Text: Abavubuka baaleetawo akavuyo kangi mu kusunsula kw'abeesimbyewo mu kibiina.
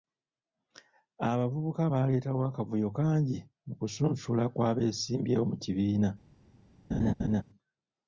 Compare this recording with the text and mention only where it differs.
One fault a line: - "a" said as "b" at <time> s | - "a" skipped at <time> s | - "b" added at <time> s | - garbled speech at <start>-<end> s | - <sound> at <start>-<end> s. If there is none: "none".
- laugh at 6.9-7.4 s